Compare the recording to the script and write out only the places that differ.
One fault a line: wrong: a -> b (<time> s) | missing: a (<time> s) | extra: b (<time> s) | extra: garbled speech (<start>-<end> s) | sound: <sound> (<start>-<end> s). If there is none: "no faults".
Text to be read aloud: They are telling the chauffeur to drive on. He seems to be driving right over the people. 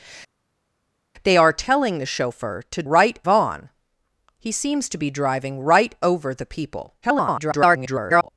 wrong: drive -> right (2.8 s)
extra: garbled speech (7.0-8.3 s)